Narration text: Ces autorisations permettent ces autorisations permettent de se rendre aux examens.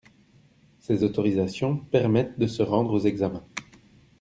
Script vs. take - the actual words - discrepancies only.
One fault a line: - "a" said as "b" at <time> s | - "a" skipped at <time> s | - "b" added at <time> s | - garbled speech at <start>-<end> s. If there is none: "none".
- "ces autorisations permettent" skipped at 2.4 s